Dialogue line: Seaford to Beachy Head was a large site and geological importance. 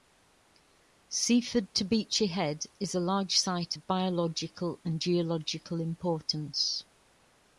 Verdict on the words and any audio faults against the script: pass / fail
fail